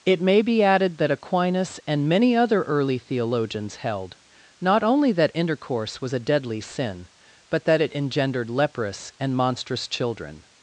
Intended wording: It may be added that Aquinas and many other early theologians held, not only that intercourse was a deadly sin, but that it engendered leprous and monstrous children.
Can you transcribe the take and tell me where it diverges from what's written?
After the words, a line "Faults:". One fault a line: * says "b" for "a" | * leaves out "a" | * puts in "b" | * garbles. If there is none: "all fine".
It may be added that Aquinas and many other early theologians held, not only that intercourse was a deadly sin, but that it engendered leprous and monstrous children.
Faults:
all fine